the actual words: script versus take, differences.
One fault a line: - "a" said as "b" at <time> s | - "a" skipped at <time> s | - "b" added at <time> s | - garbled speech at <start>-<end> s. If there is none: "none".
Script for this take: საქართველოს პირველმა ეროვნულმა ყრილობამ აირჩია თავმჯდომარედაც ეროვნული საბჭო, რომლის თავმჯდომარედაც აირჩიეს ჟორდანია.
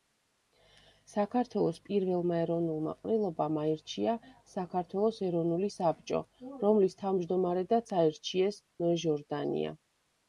- "თავმჯდომარედაც" said as "საქართველოს" at 4.5 s
- "ნოე" added at 8.9 s